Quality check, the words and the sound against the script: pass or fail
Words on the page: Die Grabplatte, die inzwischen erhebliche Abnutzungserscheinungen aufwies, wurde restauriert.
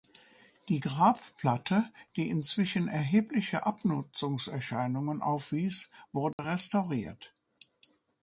fail